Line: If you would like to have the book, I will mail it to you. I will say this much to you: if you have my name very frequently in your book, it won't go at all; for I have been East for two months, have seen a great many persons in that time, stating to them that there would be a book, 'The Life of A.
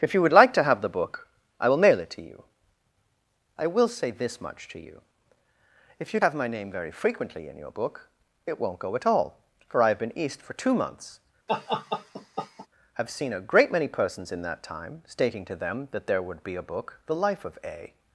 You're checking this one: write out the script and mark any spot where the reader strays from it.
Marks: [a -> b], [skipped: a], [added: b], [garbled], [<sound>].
If you would like to have the book, I will mail it to you. I will say this much to you: if you have my name very frequently in your book, it won't go at all; for I have been East for two months, [laugh] have seen a great many persons in that time, stating to them that there would be a book, 'The Life of A.